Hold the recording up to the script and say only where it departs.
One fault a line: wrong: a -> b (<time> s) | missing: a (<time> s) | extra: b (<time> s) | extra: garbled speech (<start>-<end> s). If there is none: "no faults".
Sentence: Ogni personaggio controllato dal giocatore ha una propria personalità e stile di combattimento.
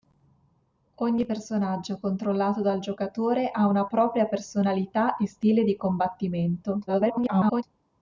extra: garbled speech (6.9-7.6 s)